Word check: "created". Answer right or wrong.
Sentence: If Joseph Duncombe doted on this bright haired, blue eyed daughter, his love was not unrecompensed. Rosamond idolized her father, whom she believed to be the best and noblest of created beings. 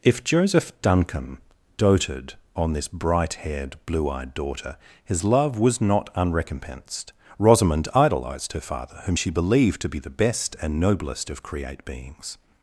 wrong